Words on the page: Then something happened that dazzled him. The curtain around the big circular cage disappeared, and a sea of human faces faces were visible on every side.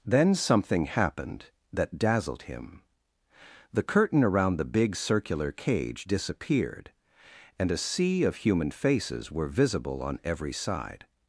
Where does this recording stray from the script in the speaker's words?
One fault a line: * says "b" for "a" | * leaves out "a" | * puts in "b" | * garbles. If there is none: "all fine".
* leaves out "faces"